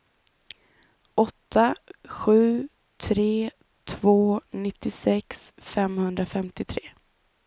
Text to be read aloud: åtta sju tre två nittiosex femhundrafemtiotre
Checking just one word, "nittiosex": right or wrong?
right